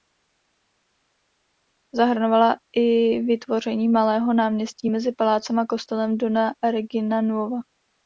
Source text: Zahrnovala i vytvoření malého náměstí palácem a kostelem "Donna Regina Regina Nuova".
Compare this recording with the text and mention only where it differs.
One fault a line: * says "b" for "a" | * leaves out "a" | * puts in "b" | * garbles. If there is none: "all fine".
* puts in "mezi"
* leaves out "Regina"